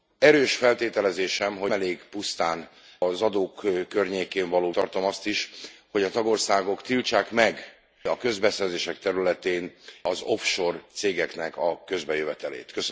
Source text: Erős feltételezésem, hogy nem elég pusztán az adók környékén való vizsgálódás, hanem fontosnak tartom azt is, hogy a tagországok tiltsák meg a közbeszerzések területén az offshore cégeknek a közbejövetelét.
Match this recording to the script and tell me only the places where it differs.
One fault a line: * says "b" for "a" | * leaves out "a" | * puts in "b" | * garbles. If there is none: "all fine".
* leaves out "nem"
* leaves out "vizsgálódás hanem fontosnak"